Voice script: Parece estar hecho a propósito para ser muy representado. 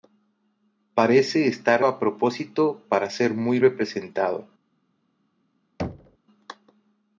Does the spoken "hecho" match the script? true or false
false